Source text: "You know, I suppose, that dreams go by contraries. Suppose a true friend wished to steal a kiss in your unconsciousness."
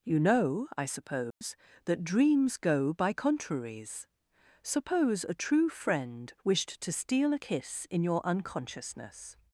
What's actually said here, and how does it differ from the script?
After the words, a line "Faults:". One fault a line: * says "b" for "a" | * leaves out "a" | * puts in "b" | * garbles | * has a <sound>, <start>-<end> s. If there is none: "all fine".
"You know, I suppose, that dreams go by contraries. Suppose a true friend wished to steal a kiss in your unconsciousness."
Faults:
* has a dropout, 1.3-1.4 s